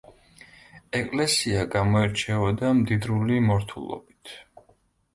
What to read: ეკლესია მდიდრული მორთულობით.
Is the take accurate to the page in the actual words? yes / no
no